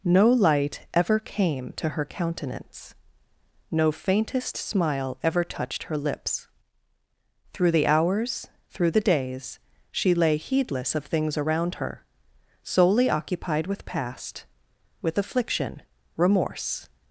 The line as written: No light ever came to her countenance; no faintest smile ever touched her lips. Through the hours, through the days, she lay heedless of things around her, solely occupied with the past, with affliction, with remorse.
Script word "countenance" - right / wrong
right